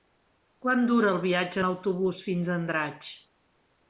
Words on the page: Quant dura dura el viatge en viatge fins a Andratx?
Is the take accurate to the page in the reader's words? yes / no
no